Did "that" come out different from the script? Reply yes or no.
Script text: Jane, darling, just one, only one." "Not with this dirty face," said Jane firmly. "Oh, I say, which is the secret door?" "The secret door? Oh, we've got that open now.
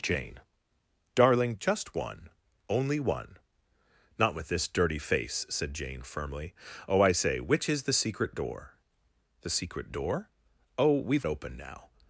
yes